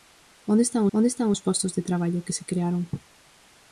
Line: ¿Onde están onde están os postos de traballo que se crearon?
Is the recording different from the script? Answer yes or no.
no